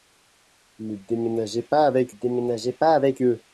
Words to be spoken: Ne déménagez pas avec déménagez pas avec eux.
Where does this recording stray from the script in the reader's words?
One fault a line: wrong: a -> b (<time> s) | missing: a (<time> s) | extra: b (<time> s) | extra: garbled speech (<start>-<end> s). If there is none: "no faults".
no faults